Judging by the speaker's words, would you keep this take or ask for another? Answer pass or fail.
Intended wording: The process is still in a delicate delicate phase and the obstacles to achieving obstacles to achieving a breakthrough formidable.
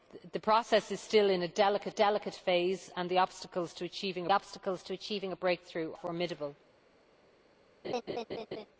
pass